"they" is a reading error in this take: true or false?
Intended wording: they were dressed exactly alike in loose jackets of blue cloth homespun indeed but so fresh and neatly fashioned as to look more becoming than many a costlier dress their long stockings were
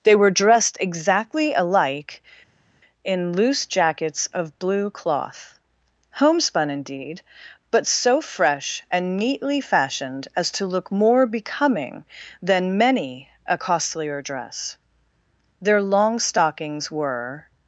false